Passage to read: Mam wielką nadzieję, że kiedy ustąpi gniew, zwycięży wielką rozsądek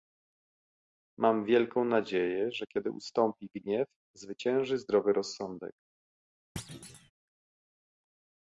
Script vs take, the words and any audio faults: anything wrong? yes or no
yes